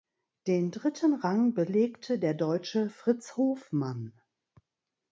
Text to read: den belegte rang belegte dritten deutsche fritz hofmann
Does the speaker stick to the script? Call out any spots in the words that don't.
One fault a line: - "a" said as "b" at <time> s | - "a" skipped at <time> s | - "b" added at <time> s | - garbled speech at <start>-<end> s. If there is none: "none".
- "belegte" said as "dritten" at 0.7 s
- "dritten" said as "der" at 2.2 s